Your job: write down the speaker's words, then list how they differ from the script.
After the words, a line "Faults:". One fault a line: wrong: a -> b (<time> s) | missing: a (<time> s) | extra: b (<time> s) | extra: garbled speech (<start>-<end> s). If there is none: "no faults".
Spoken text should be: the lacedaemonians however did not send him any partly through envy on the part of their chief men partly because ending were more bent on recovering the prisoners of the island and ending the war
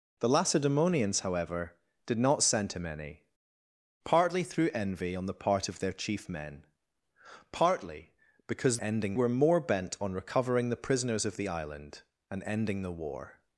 the lacedaemonians however did not send him any partly through envy on the part of their chief men partly because ending were more bent on recovering the prisoners of the island and ending the war
Faults:
no faults